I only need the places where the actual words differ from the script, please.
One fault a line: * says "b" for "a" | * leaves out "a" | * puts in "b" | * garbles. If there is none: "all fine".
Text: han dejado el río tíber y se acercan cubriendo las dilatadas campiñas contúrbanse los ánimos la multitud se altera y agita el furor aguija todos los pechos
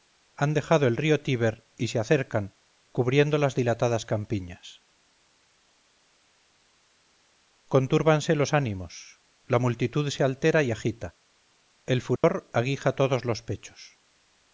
all fine